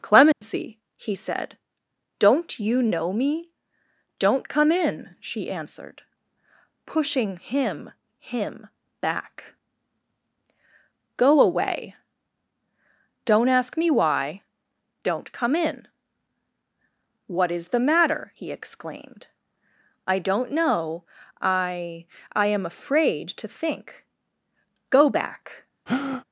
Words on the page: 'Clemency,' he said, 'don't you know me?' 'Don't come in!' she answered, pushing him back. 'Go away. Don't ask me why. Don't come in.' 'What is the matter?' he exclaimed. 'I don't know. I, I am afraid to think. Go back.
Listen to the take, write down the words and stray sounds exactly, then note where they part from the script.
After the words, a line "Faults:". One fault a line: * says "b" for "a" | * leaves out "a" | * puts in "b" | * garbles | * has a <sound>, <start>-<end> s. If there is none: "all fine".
'Clemency,' he said, 'don't you know me?' 'Don't come in!' she answered, pushing him him back. 'Go away. Don't ask me why. Don't come in.' 'What is the matter?' he exclaimed. 'I don't know. I, I am afraid to think. Go back.
Faults:
* has a dropout, 0.3-0.4 s
* puts in "him"
* has a breath, 25.9-26.2 s